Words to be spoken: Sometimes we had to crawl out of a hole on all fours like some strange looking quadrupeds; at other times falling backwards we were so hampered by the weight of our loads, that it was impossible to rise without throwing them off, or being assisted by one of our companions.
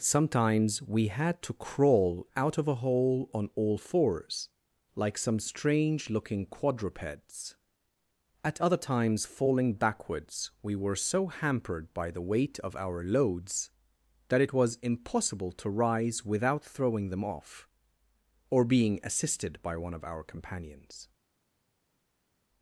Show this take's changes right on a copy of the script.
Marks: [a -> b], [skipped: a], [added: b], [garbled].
Sometimes we had to crawl out of a hole on all fours like some strange looking quadrupeds; at other times falling backwards we were so hampered by the weight of our loads, that it was impossible to rise without throwing them off, or being assisted by one of our companions.